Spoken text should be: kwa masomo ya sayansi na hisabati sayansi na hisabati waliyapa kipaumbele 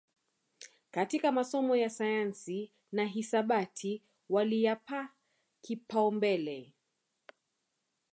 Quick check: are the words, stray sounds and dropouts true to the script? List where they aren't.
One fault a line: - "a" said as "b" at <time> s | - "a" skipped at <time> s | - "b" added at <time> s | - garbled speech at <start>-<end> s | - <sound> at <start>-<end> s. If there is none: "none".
- "kwa" said as "katika" at 0.9 s
- "sayansi na hisabati" skipped at 4.0 s